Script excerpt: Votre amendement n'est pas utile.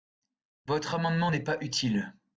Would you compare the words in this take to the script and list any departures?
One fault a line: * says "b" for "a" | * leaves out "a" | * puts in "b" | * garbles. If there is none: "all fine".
all fine